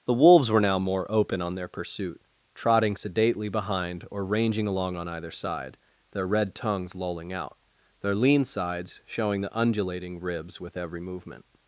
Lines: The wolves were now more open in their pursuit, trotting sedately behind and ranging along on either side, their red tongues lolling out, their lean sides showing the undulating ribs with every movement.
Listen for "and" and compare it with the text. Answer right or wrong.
wrong